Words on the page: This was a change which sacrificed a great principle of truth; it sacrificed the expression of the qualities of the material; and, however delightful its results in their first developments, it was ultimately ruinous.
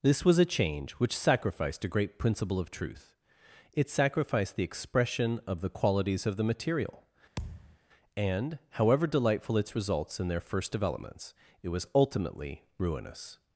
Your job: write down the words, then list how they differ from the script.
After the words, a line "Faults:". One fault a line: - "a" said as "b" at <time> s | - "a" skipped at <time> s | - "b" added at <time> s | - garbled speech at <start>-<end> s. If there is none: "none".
This was a change which sacrificed a great principle of truth; it sacrificed the expression of the qualities of the material; and, however delightful its results in their first developments, it was ultimately ruinous.
Faults:
none